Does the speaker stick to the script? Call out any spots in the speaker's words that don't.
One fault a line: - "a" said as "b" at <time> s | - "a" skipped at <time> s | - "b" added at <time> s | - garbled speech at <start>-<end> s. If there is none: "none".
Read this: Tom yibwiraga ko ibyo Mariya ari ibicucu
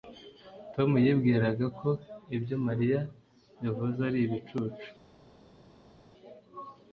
- "yavuze" added at 3.6 s